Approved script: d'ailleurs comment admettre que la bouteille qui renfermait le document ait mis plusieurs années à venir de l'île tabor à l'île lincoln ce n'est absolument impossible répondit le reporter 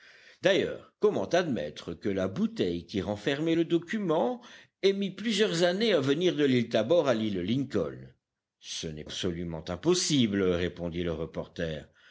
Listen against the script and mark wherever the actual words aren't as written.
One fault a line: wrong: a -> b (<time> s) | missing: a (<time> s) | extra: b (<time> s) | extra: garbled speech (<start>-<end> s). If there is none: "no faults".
no faults